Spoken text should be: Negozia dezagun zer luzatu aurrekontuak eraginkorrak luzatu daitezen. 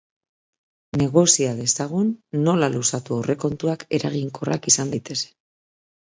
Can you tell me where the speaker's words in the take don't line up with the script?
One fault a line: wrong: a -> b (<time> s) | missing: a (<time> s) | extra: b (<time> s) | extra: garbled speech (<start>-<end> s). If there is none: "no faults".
wrong: zer -> nola (2.5 s)
wrong: luzatu -> izan (4.7 s)